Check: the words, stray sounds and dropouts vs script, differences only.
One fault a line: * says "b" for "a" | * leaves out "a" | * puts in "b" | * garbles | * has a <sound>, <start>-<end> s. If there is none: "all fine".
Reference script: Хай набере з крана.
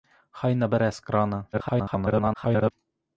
* garbles